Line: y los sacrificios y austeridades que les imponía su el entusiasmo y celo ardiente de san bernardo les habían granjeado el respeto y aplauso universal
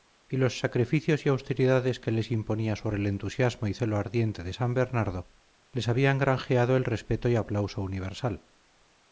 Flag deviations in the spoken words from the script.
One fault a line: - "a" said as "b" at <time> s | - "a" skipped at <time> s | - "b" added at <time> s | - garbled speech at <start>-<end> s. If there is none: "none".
none